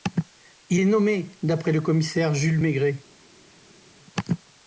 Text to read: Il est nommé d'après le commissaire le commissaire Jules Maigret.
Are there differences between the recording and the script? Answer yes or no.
yes